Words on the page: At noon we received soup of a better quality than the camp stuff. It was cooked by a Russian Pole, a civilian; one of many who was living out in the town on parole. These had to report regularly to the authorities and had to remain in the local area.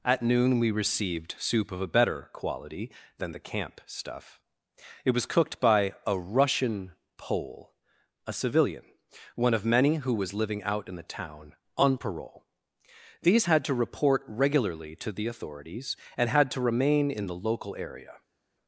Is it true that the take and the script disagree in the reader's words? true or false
false